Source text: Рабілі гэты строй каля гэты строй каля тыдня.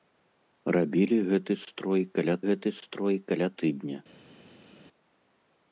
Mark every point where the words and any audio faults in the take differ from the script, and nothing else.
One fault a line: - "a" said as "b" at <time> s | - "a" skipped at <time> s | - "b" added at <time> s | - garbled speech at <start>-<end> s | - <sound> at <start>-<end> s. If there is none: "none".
none